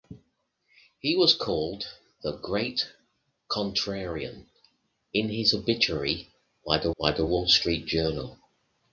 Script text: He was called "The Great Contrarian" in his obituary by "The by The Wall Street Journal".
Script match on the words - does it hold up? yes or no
yes